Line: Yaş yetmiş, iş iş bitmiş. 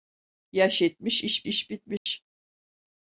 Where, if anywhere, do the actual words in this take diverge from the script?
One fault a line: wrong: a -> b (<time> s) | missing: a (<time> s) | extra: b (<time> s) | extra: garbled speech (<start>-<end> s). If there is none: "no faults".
no faults